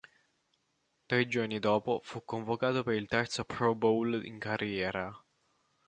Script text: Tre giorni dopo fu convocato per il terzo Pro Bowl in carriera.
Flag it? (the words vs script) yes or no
no